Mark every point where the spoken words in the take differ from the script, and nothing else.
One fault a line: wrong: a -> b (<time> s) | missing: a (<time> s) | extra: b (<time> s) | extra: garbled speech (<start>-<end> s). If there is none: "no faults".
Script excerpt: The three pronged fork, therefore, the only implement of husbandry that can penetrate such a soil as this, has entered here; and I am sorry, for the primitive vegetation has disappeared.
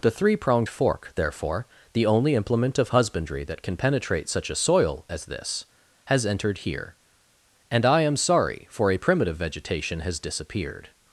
wrong: the -> a (8.9 s)